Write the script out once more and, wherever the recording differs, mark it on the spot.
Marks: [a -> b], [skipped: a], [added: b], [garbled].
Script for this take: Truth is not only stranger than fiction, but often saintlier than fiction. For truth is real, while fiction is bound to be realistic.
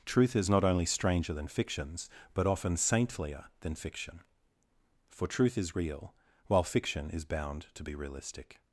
Truth is not only stranger than [fiction, -> fictions] but often saintlier than fiction. For truth is real, while fiction is bound to be realistic.